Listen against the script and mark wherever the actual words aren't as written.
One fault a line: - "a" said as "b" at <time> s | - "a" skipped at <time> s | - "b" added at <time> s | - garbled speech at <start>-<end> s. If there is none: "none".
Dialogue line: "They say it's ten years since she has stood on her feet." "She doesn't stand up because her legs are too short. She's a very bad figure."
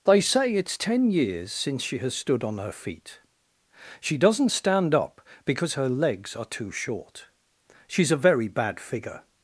none